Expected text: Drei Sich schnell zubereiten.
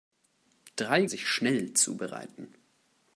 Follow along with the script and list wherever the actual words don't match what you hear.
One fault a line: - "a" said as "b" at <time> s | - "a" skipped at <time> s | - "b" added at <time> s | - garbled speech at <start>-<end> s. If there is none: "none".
none